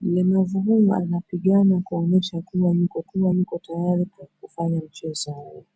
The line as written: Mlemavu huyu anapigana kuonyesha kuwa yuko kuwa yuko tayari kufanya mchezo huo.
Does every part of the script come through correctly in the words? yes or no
yes